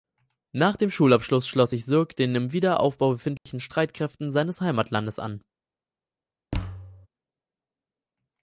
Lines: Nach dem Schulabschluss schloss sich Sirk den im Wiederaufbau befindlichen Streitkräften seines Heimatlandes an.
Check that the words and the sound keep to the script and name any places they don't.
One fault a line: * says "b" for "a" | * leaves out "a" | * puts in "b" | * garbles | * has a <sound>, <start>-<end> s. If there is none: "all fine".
* has a dropout, 3.4-3.5 s
* has a thud, 6.5-7.1 s